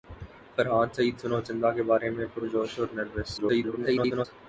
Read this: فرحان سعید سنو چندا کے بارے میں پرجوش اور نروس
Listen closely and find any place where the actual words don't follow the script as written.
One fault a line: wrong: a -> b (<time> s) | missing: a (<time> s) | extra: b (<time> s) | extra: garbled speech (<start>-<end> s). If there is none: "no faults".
extra: garbled speech (3.4-4.3 s)